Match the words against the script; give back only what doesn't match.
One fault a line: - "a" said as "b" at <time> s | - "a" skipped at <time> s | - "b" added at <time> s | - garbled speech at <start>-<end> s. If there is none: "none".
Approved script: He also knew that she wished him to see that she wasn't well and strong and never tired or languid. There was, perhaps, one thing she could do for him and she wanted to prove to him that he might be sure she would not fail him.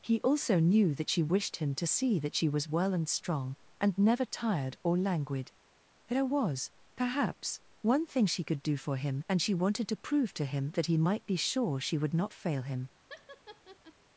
- "wasn't" said as "was" at 2.5 s